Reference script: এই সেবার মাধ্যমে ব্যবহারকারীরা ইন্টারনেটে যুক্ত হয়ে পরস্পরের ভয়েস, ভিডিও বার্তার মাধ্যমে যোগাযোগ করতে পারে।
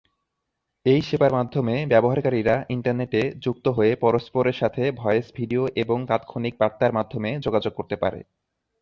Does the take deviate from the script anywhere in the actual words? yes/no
yes